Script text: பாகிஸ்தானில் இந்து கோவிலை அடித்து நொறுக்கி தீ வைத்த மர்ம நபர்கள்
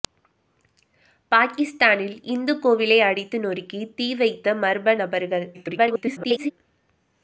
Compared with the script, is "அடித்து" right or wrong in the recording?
right